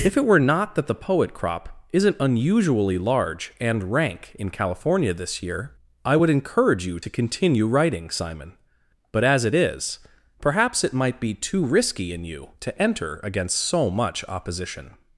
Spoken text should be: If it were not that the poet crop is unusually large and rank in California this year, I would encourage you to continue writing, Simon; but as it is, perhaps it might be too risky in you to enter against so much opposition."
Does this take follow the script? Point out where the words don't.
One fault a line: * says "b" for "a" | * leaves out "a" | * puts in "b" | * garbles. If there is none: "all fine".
* says "isn't" for "is"